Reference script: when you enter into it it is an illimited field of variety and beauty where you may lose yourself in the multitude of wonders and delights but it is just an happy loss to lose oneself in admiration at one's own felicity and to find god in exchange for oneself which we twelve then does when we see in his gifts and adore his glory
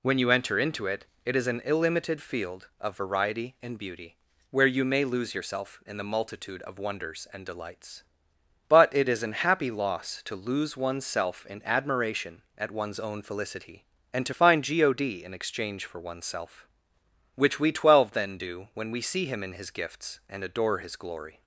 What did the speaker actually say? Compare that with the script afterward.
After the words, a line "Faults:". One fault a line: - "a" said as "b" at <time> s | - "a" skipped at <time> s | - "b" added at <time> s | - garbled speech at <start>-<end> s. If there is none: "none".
when you enter into it it is an illimited field of variety and beauty where you may lose yourself in the multitude of wonders and delights but it is an happy loss to lose oneself in admiration at one's own felicity and to find god in exchange for oneself which we twelve then do when we see him in his gifts and adore his glory
Faults:
- "just" skipped at 9.2 s
- "does" said as "do" at 18.4 s
- "him" added at 19.3 s